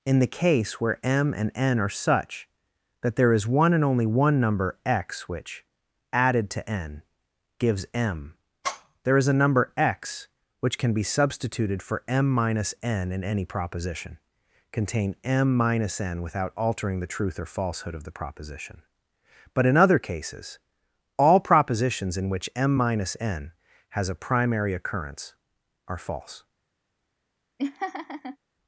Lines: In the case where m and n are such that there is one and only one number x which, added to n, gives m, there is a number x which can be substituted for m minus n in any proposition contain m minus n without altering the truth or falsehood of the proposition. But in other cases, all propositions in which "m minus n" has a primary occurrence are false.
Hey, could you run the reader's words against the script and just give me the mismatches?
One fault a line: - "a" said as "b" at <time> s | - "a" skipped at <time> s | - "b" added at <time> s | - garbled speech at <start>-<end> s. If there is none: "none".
none